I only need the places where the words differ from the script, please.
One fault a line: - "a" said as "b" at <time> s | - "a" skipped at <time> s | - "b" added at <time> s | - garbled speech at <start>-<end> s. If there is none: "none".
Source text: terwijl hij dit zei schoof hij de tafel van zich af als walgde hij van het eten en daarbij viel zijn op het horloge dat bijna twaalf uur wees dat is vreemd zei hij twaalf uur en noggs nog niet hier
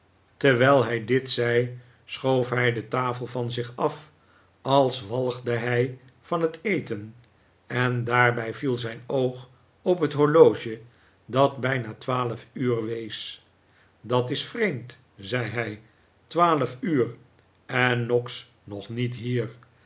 - "oog" added at 9.1 s